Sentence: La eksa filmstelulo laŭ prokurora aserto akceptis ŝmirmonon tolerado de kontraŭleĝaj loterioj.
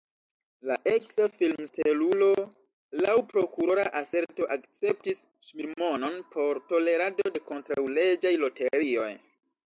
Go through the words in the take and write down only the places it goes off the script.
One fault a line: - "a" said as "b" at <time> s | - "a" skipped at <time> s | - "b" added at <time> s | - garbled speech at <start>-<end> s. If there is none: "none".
- "por" added at 6.4 s